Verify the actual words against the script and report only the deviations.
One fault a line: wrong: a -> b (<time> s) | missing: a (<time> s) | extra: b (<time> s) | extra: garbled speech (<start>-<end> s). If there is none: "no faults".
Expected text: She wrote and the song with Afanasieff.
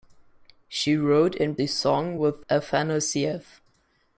no faults